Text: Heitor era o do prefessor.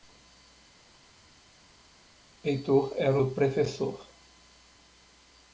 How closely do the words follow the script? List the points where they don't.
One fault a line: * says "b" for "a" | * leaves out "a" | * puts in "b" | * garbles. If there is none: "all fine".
all fine